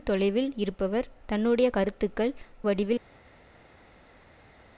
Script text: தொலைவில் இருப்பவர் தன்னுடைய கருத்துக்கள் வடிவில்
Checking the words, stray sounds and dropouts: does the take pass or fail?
pass